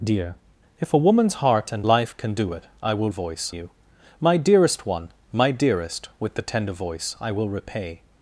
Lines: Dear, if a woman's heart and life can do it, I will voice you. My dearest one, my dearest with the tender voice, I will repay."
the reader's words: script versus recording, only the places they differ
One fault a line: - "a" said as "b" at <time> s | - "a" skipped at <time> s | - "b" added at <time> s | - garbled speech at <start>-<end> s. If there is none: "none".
none